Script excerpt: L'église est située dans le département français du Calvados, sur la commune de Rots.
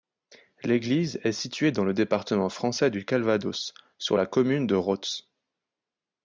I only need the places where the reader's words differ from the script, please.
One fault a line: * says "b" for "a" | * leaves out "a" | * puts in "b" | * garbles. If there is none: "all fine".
all fine